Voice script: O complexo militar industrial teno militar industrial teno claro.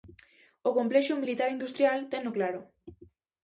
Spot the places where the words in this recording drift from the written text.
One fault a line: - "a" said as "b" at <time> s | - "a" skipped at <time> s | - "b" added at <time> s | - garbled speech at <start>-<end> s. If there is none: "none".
- "militar industrial teno" skipped at 2.3 s